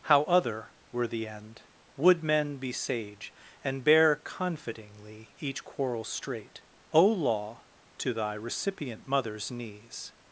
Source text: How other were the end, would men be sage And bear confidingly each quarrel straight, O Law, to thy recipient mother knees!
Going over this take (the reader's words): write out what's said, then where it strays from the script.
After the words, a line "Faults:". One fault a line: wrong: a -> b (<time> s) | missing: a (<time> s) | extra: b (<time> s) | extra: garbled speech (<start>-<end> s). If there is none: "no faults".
How other were the end, would men be sage And bear confidingly each quarrel straight, O Law, to thy recipient mothers knees!
Faults:
wrong: mother -> mothers (9.1 s)